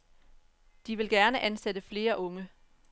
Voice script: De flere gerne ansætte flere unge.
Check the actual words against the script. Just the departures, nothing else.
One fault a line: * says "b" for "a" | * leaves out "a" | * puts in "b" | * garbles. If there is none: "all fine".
* says "vil" for "flere"